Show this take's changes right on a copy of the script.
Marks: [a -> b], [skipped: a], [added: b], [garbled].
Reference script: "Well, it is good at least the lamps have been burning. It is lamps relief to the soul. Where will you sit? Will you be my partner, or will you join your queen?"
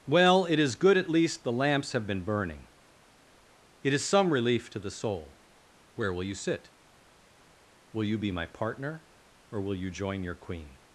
"Well, it is good at least the lamps have been burning. It is [lamps -> some] relief to the soul. Where will you sit? Will you be my partner, or will you join your queen?"